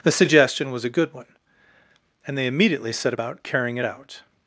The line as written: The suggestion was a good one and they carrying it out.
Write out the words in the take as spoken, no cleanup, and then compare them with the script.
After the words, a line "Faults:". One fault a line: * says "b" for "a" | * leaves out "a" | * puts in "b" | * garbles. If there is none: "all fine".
The suggestion was a good one and they immediately set about carrying it out.
Faults:
* puts in "immediately set about"